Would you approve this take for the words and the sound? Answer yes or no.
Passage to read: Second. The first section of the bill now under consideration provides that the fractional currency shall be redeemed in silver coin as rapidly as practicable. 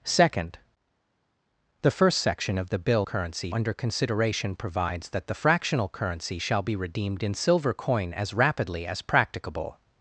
no